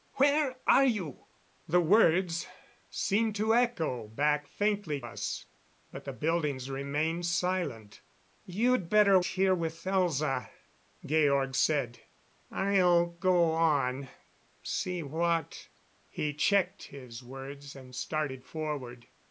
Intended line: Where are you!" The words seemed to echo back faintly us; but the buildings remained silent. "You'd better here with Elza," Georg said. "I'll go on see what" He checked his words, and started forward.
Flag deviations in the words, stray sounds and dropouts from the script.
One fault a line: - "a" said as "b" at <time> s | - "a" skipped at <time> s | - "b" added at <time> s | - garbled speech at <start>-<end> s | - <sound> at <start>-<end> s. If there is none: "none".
none